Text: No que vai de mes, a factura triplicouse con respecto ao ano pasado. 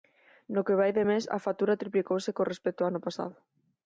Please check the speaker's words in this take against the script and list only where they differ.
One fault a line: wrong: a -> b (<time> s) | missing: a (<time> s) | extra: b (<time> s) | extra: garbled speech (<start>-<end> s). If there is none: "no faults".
no faults